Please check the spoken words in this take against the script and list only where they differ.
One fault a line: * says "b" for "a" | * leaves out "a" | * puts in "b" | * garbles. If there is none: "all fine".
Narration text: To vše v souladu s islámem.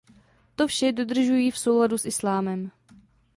* puts in "dodržují"